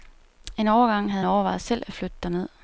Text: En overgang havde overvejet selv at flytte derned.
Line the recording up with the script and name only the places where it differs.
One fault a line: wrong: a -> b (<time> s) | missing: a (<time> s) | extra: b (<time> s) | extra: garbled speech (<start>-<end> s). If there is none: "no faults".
no faults